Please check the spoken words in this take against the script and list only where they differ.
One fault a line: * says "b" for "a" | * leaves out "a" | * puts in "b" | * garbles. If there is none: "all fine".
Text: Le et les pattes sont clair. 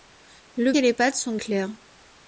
all fine